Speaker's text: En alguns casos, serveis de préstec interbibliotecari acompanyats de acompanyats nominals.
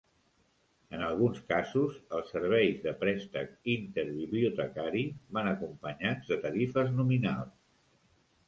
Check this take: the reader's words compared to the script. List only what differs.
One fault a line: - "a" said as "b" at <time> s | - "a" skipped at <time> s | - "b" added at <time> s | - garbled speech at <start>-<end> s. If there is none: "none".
- "els" added at 2.2 s
- "van" added at 5.4 s
- "acompanyats" said as "tarifes" at 6.5 s